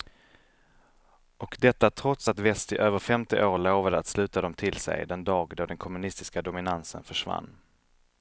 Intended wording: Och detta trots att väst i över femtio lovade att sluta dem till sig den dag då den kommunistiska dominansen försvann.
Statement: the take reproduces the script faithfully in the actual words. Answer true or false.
false